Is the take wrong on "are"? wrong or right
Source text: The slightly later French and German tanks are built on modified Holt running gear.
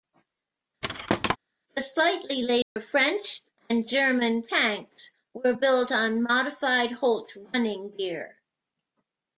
wrong